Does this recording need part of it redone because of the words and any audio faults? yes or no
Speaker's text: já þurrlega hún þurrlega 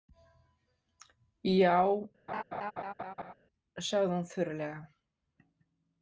yes